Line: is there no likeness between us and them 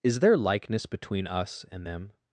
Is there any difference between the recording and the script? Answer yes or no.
yes